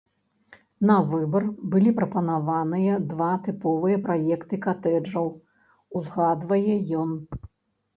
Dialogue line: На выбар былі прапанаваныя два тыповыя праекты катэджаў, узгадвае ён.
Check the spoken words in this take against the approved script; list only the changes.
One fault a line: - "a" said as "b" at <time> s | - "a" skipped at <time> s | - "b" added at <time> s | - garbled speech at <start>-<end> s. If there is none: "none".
none